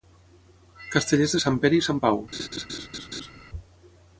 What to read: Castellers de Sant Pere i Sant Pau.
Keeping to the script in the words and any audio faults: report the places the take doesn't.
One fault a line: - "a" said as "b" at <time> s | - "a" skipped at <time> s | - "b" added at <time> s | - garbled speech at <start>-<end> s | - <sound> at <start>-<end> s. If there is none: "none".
- laugh at 2.3-3.3 s